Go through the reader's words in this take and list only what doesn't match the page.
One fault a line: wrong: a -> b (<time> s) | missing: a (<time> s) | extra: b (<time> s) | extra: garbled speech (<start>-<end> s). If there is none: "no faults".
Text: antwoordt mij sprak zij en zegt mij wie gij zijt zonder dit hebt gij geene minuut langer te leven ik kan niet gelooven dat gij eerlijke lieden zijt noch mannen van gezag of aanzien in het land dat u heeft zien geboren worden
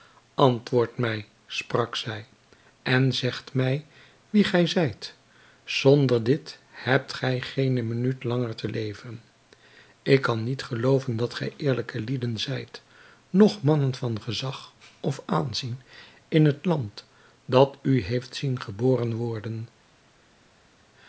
no faults